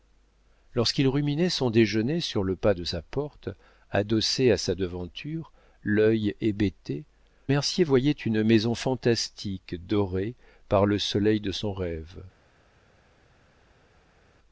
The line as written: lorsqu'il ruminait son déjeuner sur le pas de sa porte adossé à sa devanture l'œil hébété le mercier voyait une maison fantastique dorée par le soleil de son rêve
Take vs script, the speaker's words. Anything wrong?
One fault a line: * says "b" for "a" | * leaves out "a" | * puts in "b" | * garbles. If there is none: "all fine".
* leaves out "le"